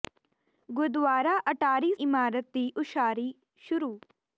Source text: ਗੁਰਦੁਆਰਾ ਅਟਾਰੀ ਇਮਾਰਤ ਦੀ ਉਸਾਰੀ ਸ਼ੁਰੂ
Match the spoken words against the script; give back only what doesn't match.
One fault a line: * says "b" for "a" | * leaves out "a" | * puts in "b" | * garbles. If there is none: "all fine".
all fine